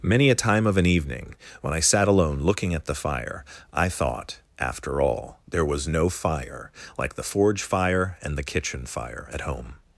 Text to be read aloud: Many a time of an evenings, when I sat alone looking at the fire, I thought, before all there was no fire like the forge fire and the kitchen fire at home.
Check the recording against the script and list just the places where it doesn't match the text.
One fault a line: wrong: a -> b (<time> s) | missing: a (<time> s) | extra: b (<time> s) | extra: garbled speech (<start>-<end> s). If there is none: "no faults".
wrong: evenings -> evening (0.9 s)
wrong: before -> after (4.6 s)